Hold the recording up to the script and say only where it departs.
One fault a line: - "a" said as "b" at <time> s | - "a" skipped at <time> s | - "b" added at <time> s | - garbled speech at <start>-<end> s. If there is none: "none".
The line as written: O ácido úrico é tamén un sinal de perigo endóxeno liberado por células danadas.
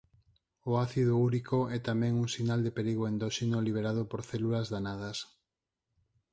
none